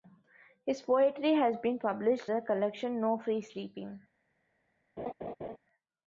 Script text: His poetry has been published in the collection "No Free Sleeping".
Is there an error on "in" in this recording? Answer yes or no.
yes